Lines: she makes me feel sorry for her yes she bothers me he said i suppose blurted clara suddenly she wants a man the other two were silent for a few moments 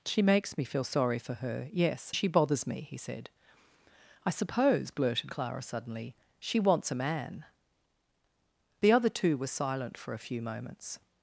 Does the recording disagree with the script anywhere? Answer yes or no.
no